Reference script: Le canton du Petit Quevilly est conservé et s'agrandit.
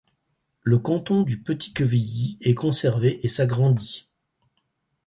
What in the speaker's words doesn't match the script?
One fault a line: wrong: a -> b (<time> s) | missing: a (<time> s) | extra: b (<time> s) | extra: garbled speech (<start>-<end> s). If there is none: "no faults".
no faults